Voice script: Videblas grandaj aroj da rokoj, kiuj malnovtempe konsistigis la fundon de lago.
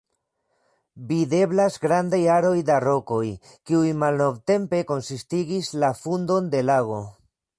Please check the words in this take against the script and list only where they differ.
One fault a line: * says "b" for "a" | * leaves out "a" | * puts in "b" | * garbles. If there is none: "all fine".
all fine